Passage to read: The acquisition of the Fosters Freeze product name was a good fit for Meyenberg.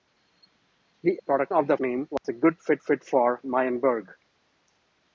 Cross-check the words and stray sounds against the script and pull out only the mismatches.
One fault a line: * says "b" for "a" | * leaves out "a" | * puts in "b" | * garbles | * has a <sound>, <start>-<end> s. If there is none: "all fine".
* says "product" for "acquisition"
* leaves out "Fosters Freeze product"
* has a dropout, 2.2-2.2 s
* puts in "fit"